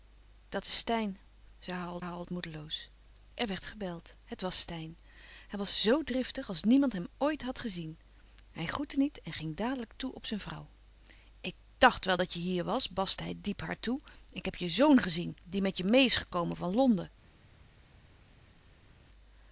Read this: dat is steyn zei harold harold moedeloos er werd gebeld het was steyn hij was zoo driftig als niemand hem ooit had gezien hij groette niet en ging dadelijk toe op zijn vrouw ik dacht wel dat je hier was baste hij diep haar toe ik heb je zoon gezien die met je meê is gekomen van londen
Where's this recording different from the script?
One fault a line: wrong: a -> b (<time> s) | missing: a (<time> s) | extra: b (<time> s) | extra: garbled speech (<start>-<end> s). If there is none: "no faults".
no faults